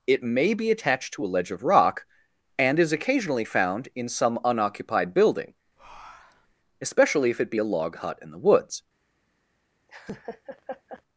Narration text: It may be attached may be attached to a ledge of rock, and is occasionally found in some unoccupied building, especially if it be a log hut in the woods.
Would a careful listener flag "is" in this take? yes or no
no